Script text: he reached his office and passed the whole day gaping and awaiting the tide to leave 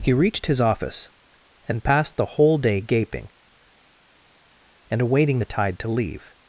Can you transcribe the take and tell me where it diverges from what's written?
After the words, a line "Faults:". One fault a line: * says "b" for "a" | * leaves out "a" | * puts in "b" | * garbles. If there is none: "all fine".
he reached his office and passed the whole day gaping and awaiting the tide to leave
Faults:
all fine